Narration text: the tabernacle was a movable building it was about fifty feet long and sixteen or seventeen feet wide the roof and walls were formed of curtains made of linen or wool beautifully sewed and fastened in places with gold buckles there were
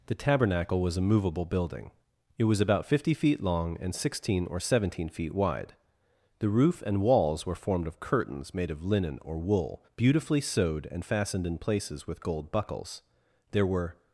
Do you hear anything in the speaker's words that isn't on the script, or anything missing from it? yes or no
no